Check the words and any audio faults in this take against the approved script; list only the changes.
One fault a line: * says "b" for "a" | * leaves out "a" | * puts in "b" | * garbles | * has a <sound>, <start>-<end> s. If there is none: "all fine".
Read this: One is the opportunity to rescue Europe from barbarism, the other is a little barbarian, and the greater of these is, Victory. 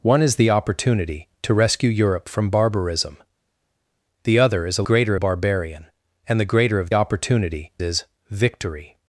* says "greater" for "little"
* says "opportunity" for "these"